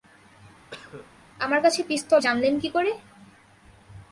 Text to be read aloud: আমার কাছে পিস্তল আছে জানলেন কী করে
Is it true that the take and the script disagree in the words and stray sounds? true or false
true